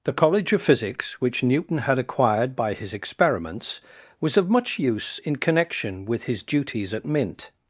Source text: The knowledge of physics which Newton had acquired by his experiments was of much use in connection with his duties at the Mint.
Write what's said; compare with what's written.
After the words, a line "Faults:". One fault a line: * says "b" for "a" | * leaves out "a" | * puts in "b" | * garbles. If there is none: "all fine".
The college of physics which Newton had acquired by his experiments was of much use in connection with his duties at Mint.
Faults:
* says "college" for "knowledge"
* leaves out "the"